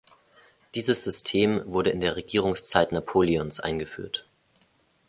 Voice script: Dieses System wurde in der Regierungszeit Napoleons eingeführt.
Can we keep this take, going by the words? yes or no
yes